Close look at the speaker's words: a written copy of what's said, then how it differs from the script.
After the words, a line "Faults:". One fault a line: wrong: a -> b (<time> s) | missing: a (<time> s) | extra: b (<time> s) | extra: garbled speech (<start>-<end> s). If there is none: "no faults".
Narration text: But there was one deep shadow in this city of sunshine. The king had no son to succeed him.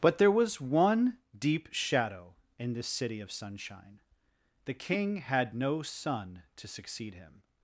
But there was one deep shadow in this city of sunshine. The king had no son to succeed him.
Faults:
no faults